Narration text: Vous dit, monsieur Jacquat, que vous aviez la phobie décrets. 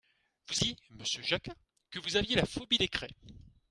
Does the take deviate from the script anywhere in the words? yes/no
no